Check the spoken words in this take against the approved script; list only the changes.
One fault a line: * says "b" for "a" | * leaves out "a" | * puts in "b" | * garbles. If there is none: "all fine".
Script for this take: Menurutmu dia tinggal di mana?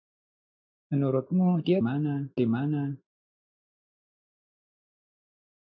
* says "mana" for "tinggal"